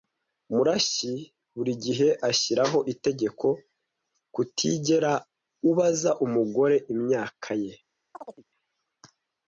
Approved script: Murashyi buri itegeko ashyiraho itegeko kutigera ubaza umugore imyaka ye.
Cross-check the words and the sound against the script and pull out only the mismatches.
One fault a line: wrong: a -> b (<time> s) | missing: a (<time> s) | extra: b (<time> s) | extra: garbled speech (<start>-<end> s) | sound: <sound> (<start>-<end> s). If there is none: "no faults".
wrong: itegeko -> gihe (1.8 s)
sound: chirp (8.1-8.4 s)